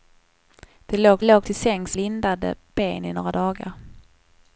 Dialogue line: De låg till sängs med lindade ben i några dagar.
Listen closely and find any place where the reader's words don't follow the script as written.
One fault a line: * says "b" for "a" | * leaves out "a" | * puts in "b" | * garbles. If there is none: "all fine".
* puts in "låg"
* leaves out "med"